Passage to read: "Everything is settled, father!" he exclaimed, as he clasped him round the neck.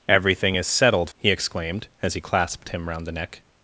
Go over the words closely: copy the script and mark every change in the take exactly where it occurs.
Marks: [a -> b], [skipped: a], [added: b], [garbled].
"Everything is settled, [skipped: father!"] he exclaimed, as he clasped him round the neck.